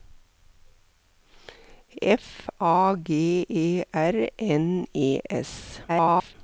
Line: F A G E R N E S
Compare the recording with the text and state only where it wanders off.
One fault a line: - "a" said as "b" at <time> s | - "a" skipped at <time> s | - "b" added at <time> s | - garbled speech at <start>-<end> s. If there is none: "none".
- garbled speech at 5.9-6.3 s